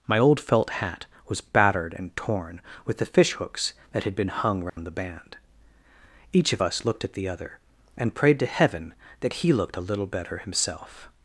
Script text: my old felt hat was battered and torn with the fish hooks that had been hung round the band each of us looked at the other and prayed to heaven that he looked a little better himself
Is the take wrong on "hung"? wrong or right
right